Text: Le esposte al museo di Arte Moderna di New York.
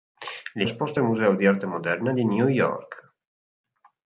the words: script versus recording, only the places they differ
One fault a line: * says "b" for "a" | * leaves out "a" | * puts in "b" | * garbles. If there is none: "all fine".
all fine